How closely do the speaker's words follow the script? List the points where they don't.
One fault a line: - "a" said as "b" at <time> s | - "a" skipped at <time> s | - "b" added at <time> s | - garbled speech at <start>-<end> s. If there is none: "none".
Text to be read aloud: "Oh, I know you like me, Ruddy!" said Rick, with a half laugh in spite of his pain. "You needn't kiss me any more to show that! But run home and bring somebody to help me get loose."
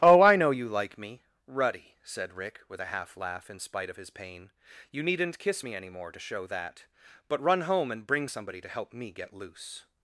none